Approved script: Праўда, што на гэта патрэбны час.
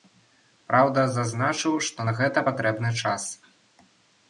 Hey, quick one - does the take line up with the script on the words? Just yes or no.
no